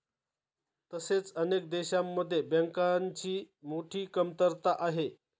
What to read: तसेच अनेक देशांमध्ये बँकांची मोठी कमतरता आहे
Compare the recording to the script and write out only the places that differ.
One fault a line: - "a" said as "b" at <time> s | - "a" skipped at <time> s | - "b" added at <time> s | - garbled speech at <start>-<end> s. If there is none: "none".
none